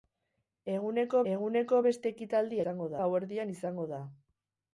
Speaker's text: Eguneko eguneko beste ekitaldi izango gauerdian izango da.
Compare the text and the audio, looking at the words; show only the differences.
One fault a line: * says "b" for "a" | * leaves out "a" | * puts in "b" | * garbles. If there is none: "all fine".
all fine